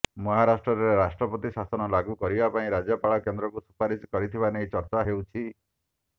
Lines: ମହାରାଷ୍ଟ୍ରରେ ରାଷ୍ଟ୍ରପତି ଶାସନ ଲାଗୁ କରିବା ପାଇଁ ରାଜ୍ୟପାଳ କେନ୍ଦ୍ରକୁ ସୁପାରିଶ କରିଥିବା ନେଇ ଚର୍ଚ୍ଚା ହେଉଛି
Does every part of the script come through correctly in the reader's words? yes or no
yes